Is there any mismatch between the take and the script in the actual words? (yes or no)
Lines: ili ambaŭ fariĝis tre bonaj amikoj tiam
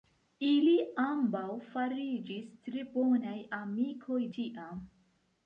no